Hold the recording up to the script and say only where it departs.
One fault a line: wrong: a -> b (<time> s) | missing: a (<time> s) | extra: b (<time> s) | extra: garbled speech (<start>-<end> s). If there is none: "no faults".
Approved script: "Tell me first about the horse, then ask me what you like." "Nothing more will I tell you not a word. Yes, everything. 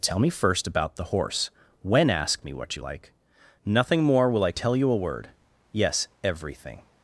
wrong: then -> when (1.8 s)
missing: not (4.9 s)